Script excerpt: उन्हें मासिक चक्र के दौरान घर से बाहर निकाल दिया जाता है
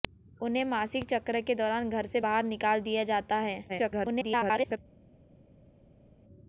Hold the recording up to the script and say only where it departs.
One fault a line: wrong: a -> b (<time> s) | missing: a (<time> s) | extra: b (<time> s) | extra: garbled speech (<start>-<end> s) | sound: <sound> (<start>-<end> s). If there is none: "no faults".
extra: garbled speech (3.7-4.8 s)